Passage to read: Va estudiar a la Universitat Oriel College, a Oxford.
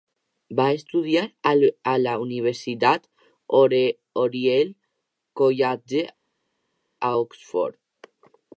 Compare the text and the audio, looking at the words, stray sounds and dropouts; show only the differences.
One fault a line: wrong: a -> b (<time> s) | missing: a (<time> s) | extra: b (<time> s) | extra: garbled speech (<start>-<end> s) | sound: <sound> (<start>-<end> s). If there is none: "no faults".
no faults